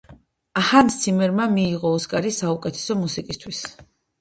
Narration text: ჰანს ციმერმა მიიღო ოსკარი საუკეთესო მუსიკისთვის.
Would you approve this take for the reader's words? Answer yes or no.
yes